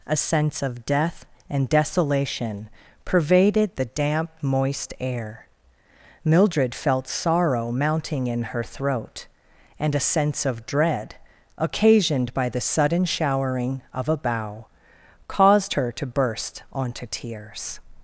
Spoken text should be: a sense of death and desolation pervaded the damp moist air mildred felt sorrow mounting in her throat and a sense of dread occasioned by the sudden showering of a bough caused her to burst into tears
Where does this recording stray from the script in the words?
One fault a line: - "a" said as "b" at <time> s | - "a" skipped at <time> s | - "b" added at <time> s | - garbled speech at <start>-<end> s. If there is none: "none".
- "into" said as "onto" at 16.7 s